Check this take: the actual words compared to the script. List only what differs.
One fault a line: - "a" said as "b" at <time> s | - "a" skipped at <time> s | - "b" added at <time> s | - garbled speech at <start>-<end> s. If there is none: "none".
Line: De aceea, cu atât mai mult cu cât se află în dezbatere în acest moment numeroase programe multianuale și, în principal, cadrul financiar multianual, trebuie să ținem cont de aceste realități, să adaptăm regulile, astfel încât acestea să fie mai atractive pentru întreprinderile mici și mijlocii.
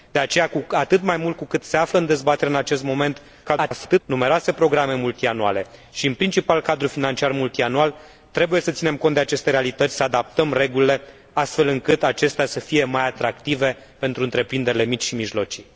- garbled speech at 3.4-4.0 s